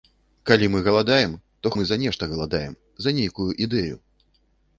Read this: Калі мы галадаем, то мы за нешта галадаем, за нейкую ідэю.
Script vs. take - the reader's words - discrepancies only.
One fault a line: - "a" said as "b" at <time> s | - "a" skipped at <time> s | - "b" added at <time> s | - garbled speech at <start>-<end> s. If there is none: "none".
none